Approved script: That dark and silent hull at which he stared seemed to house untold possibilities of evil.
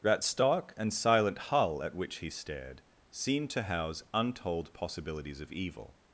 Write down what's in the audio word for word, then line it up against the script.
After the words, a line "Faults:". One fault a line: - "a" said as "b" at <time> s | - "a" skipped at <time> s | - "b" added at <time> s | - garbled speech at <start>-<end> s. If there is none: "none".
That stark and silent hull at which he stared seemed to house untold possibilities of evil.
Faults:
- "dark" said as "stark" at 0.2 s